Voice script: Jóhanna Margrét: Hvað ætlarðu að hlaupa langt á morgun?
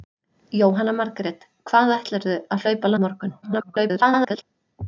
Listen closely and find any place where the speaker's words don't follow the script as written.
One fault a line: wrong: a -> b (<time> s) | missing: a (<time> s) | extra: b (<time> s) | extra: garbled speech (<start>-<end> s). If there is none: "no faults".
missing: langt (2.9 s)
extra: garbled speech (3.4-4.4 s)